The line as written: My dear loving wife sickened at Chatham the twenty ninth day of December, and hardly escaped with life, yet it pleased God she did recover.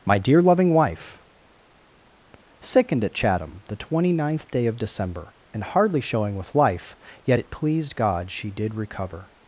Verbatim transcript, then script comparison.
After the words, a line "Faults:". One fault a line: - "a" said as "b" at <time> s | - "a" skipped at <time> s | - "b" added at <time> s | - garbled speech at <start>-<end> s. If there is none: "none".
My dear loving wife sickened at Chatham the twenty ninth day of December, and hardly showing with life, yet it pleased God she did recover.
Faults:
- "escaped" said as "showing" at 6.0 s